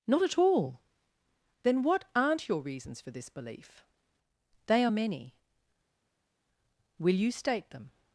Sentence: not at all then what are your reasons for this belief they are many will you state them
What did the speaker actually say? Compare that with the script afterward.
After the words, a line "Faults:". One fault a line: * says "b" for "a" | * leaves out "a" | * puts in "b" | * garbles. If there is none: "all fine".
not at all then what aren't your reasons for this belief they are many will you state them
Faults:
* says "aren't" for "are"